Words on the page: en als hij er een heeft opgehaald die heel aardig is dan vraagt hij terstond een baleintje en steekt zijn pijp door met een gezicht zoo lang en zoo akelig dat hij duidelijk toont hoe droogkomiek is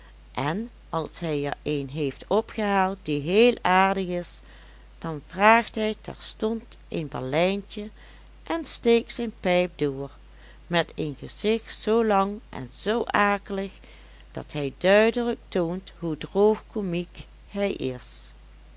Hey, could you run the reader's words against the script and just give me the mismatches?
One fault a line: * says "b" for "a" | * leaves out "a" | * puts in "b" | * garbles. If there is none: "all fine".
* puts in "hij"